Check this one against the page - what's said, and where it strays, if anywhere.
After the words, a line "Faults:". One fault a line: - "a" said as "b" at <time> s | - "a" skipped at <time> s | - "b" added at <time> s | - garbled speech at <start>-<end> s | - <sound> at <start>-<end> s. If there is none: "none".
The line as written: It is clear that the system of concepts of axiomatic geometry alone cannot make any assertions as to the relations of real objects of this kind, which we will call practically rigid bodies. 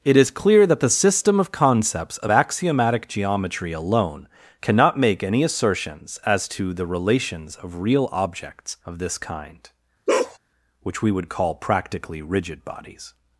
It is clear that the system of concepts of axiomatic geometry alone cannot make any assertions as to the relations of real objects of this kind, which we would call practically rigid bodies.
Faults:
- bark at 10.1-10.4 s
- "will" said as "would" at 11.1 s